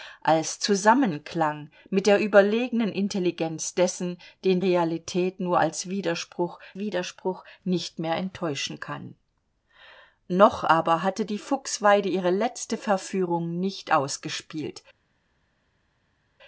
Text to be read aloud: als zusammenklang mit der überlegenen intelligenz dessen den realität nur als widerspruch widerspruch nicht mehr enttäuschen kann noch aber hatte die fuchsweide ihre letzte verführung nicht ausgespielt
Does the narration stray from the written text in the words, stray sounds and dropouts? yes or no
no